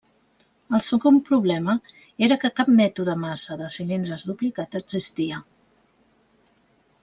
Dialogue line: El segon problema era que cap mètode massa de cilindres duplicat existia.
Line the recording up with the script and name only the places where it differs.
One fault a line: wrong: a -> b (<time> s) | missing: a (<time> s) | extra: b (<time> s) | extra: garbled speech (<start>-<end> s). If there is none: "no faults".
no faults